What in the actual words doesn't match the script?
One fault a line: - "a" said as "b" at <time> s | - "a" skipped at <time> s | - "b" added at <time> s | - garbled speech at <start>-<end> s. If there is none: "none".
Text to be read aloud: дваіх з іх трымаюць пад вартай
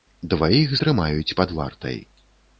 - "з іх" skipped at 0.7 s